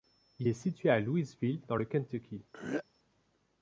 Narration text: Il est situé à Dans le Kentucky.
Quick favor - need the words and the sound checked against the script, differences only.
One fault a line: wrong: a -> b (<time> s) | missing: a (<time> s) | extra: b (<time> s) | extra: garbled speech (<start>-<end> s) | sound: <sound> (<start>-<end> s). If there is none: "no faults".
extra: Louisville (1.0 s)
sound: throat clearing (2.5-2.8 s)